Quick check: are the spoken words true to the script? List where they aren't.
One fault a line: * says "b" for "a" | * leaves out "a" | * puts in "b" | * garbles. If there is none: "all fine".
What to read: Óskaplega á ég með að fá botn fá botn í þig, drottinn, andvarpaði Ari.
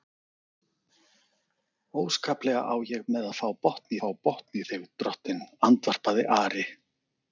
all fine